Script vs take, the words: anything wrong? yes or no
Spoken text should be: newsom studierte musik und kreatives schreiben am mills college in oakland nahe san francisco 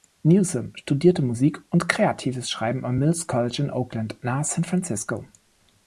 no